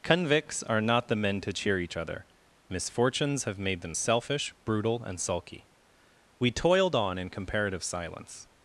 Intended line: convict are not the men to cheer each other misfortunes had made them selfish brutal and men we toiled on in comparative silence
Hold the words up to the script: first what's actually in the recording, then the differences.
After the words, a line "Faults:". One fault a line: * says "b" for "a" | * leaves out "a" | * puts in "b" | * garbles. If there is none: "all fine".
convicts are not the men to cheer each other misfortunes have made them selfish brutal and sulky we toiled on in comparative silence
Faults:
* says "convicts" for "convict"
* says "have" for "had"
* says "sulky" for "men"